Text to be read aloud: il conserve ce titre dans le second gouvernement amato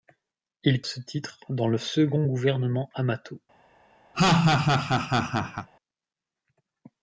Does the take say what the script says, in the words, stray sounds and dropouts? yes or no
no